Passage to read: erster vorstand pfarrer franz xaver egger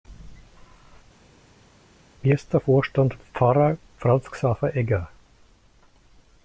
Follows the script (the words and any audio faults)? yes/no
yes